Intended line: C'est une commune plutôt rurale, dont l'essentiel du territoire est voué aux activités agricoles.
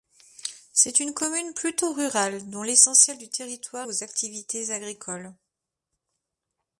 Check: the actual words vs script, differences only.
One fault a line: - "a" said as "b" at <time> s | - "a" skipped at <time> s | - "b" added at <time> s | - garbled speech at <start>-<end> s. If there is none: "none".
- "est voué" skipped at 3.9 s